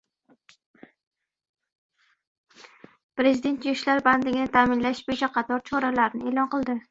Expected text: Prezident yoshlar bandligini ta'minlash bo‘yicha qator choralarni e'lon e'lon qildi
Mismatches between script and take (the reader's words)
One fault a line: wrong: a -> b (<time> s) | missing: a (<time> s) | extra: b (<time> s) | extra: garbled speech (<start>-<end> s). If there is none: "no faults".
missing: e'lon (6.5 s)